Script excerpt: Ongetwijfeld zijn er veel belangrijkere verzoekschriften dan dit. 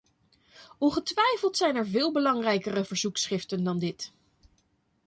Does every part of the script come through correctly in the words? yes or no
yes